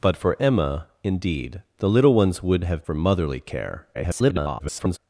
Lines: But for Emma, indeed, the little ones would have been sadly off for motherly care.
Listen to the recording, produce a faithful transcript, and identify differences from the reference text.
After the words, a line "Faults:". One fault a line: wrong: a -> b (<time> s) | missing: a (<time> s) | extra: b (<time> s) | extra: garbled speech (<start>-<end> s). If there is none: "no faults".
But for Emma, indeed, the little ones would have for motherly care. [garbled]
Faults:
missing: been sadly off (2.8 s)
extra: garbled speech (3.9-5.0 s)